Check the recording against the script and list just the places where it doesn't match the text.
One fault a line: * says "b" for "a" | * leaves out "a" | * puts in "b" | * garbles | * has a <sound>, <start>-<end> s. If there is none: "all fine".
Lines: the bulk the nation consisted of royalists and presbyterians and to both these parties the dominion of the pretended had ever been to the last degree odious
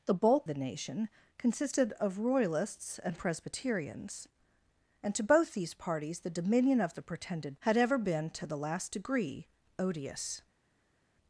all fine